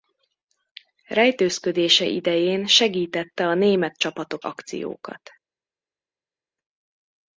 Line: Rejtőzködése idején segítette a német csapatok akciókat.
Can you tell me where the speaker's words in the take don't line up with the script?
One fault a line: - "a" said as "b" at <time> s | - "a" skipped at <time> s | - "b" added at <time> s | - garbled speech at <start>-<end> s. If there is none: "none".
none